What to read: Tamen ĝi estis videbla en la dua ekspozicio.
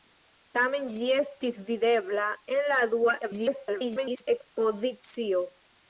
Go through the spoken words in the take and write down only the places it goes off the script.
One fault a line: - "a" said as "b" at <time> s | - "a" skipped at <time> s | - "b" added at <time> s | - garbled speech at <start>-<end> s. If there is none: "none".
- garbled speech at 3.2-4.3 s